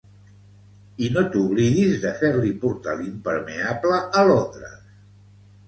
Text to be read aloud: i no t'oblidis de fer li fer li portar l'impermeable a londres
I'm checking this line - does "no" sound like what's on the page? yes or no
yes